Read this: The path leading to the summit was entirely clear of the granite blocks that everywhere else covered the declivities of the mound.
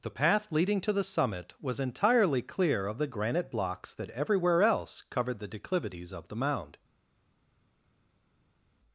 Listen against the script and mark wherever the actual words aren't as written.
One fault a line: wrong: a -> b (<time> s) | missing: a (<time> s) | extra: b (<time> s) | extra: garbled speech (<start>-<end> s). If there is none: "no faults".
no faults